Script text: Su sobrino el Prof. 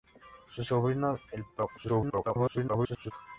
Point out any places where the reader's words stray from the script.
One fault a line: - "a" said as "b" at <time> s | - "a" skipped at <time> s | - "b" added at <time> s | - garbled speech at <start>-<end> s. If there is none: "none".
- garbled speech at 1.8-3.1 s